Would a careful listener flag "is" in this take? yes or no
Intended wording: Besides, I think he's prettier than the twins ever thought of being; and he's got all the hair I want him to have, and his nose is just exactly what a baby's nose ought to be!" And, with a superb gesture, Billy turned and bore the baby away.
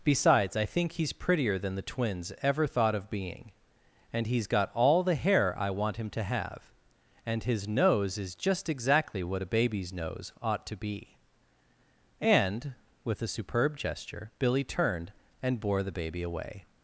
no